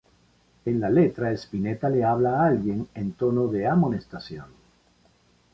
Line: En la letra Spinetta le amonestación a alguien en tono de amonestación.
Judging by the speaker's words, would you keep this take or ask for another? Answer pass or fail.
fail